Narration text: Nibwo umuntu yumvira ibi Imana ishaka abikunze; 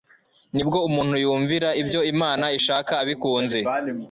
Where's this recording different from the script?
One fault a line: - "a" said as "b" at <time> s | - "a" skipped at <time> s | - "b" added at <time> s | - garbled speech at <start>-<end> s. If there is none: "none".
- "ibi" said as "ibyo" at 1.8 s